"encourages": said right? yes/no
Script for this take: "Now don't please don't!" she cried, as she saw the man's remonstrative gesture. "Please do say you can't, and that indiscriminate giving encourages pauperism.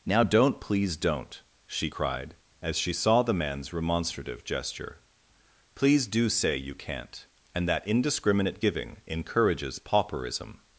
yes